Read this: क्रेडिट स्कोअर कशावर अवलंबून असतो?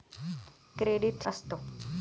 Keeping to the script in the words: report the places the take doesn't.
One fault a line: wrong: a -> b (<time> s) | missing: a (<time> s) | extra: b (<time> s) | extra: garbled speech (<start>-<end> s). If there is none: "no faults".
missing: स्कोअर कशावर अवलंबून (1.2 s)